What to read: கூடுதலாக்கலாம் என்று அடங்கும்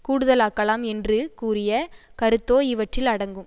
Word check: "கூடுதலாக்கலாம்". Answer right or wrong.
right